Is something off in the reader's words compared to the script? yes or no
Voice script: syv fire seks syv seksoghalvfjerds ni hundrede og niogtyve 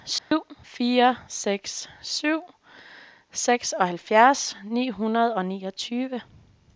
no